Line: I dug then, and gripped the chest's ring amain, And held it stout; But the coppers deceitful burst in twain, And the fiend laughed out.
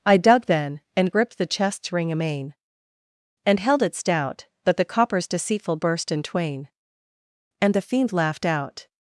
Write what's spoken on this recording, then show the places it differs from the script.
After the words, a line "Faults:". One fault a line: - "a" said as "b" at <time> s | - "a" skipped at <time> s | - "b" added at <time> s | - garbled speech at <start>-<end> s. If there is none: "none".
I dug then, and gripped the chest's ring amain, And held it stout; But the coppers deceitful burst in twain, And the fiend laughed out.
Faults:
none